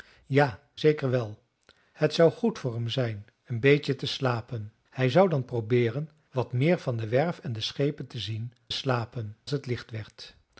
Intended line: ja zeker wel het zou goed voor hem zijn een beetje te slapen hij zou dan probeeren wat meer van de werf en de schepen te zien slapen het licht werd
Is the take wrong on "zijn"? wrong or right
right